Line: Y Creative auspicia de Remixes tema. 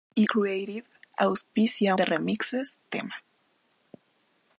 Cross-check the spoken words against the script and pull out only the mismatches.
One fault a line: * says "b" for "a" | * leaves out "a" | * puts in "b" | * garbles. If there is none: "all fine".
all fine